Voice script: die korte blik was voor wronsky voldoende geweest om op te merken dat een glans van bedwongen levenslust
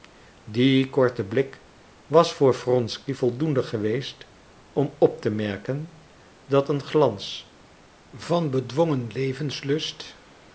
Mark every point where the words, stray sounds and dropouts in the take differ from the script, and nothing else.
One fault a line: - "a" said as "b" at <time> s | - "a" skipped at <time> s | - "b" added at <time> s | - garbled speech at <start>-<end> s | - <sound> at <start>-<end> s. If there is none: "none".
none